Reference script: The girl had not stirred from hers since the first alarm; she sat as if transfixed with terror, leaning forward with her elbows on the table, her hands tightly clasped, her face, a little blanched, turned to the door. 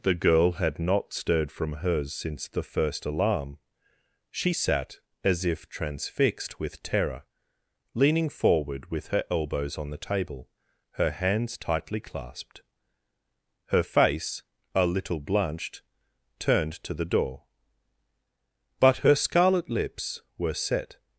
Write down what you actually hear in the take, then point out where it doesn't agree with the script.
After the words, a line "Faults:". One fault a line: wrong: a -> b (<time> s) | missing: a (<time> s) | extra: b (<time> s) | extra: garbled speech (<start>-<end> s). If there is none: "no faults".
The girl had not stirred from hers since the first alarm; she sat as if transfixed with terror, leaning forward with her elbows on the table, her hands tightly clasped, her face, a little blanched, turned to the door. But her scarlet lips were set
Faults:
extra: But her scarlet lips were set (18.8 s)